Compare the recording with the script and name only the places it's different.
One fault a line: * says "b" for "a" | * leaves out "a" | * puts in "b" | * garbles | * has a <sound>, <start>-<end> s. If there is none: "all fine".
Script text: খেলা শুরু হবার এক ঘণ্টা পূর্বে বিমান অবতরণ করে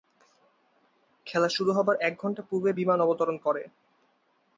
all fine